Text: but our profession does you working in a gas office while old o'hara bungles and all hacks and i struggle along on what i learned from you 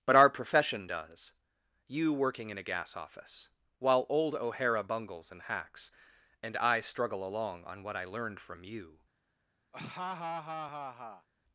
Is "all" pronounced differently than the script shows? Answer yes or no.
yes